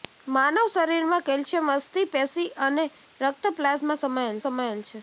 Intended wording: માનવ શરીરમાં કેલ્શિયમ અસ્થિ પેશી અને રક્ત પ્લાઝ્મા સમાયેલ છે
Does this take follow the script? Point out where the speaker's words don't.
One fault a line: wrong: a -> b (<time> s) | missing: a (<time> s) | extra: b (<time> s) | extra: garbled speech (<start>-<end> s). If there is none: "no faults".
extra: સમાયેલ (4.4 s)